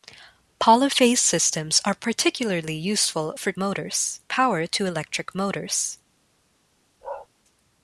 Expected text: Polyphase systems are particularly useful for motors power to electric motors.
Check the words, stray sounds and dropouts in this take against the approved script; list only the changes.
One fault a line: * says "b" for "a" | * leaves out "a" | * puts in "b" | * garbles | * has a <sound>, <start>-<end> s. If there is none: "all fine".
* has a bark, 7.0-7.3 s